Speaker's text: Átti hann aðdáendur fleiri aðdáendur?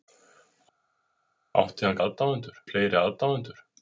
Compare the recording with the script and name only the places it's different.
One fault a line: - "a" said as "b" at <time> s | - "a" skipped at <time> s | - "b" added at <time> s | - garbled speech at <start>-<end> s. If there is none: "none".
none